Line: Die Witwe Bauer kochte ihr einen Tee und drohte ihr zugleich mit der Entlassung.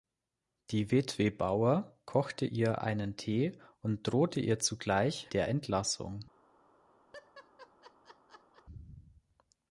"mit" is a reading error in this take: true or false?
true